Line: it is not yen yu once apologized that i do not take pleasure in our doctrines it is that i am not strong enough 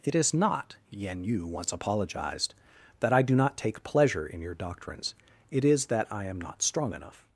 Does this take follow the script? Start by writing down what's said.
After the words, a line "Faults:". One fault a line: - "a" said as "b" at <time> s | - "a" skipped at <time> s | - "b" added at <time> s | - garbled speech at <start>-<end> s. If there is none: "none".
it is not yen yu once apologized that i do not take pleasure in your doctrines it is that i am not strong enough
Faults:
- "our" said as "your" at 4.4 s